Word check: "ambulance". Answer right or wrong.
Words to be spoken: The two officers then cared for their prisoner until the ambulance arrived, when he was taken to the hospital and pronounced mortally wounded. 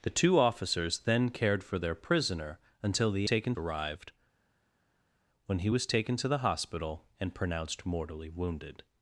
wrong